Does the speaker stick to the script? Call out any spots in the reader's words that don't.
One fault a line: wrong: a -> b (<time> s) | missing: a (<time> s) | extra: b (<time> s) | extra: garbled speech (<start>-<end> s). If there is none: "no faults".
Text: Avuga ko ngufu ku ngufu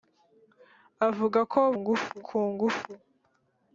no faults